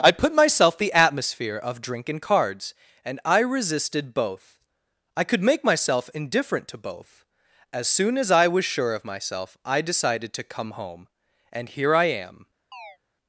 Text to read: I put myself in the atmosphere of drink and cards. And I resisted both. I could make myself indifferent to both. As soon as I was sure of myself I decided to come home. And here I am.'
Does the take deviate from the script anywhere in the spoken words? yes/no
yes